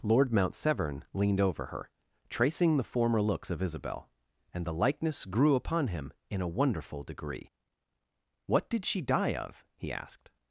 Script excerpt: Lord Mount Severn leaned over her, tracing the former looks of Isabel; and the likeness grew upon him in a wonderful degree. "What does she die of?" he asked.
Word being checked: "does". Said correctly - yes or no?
no